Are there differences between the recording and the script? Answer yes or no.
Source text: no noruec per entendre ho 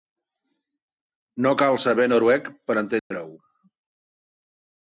yes